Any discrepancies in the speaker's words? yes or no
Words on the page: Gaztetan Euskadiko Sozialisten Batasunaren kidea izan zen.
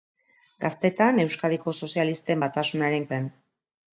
yes